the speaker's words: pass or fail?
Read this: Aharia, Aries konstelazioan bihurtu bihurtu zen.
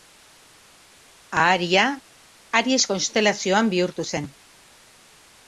fail